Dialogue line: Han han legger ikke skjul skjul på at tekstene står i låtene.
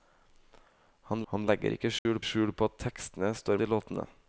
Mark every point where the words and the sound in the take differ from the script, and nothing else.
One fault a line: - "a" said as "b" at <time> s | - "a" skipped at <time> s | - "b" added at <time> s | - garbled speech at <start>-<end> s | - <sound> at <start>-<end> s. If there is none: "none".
- dropout at 2.0-2.1 s